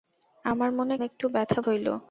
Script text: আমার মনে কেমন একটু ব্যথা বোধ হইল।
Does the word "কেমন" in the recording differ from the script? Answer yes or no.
yes